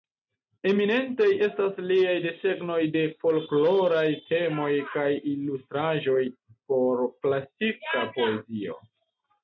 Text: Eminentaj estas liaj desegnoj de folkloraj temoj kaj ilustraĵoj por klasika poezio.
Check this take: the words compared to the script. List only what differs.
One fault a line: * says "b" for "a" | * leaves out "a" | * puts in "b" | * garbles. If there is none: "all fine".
all fine